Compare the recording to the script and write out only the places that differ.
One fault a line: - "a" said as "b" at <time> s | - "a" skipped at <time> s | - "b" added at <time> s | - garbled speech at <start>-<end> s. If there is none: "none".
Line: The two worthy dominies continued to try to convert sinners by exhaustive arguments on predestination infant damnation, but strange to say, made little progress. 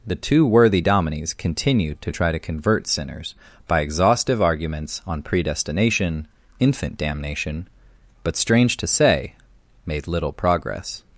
none